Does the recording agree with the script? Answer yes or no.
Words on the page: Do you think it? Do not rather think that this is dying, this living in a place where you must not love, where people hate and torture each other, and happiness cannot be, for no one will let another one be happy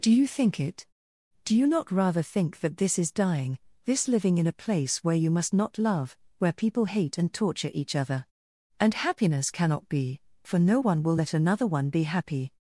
no